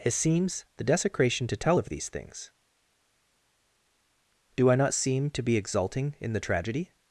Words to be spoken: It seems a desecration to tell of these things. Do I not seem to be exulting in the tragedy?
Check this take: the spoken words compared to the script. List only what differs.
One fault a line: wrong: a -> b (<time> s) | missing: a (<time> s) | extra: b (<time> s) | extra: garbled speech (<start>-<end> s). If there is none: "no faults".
wrong: a -> the (0.8 s)